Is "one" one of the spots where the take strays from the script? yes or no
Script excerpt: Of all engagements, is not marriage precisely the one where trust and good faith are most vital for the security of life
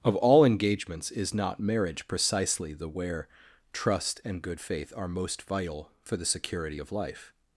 yes